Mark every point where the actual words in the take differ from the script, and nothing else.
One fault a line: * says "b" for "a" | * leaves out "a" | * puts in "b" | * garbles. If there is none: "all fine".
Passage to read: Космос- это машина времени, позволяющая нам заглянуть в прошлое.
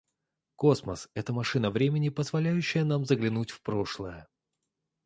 all fine